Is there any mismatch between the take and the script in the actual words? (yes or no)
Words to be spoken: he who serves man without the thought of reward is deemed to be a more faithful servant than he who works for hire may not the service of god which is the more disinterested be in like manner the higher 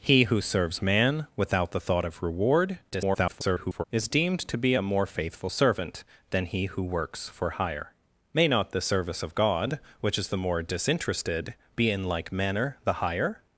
yes